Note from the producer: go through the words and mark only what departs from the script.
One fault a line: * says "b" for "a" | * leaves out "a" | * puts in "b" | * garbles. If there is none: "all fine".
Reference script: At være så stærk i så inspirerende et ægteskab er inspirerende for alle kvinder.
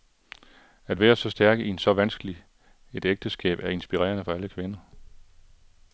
* says "vanskeligt" for "inspirerende"